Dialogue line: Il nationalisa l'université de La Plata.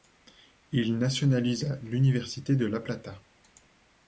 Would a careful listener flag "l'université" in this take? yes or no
no